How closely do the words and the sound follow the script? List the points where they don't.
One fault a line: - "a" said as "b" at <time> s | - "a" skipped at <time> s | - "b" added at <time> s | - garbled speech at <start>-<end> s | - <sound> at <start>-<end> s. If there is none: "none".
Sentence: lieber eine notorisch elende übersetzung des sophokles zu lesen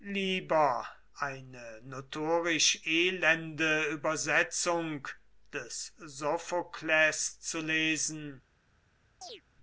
- chirp at 9.2-9.4 s